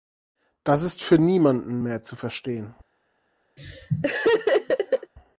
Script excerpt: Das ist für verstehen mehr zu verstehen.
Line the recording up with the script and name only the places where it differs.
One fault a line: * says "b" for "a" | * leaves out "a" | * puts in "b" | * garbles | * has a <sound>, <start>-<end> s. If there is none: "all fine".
* says "niemanden" for "verstehen"
* has a laugh, 3.6-5.1 s